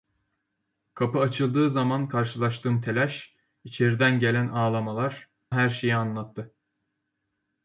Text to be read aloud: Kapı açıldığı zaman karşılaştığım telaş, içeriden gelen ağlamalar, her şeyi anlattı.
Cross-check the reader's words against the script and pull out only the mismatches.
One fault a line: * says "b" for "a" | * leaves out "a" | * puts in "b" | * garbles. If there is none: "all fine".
all fine